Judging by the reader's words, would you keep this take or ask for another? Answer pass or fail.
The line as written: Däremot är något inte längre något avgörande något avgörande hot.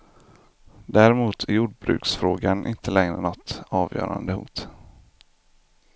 fail